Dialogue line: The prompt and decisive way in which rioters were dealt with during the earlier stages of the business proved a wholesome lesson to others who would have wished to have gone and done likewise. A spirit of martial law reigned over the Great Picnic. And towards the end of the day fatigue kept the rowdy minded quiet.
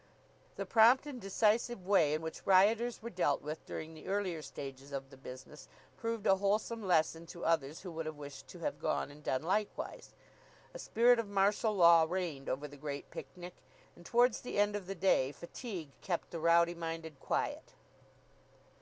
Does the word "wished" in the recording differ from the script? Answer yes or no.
no